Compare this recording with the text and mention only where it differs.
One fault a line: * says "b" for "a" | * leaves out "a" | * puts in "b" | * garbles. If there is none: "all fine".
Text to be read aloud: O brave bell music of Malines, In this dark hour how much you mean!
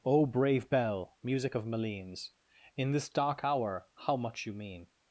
all fine